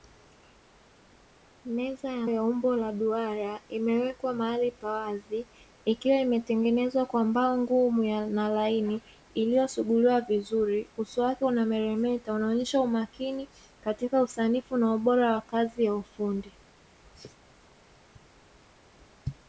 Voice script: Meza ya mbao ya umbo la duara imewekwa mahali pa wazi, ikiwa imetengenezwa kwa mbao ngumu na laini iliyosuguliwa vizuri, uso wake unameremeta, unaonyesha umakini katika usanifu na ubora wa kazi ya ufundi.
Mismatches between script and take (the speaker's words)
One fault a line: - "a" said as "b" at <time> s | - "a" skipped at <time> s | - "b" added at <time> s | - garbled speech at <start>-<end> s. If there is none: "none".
- "mbao" skipped at 2.3 s